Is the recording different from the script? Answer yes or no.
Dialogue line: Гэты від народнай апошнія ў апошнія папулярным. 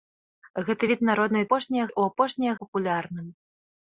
no